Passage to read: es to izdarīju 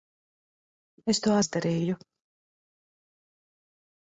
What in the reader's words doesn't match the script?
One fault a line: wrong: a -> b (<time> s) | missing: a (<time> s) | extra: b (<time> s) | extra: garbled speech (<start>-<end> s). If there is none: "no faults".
no faults